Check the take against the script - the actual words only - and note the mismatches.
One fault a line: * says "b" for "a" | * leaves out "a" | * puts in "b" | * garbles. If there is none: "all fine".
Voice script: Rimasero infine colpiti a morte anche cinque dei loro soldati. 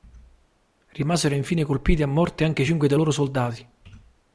all fine